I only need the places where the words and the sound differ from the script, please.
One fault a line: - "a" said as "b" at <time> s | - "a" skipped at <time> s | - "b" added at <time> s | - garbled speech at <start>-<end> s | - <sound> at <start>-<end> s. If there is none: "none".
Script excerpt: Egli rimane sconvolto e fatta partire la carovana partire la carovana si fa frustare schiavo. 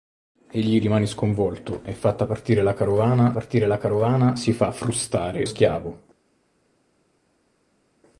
none